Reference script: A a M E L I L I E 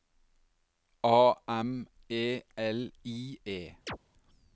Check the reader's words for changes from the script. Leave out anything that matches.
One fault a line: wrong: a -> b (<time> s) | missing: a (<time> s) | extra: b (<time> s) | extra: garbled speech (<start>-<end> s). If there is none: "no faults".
missing: a (1.4 s)
missing: L I (3.4 s)